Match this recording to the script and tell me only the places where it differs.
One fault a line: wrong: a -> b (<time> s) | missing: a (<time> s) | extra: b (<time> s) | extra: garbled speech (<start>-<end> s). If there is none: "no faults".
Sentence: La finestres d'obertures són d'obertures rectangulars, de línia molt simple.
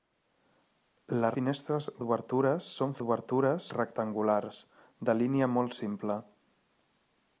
no faults